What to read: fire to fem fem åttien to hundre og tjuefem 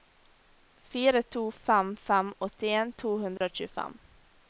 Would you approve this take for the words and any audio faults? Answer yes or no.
no